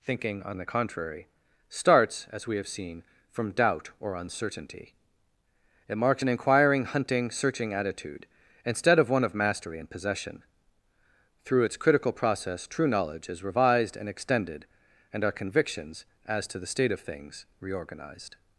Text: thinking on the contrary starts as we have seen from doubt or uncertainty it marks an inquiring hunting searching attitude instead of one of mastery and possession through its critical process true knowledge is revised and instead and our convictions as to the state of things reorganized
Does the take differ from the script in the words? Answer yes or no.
yes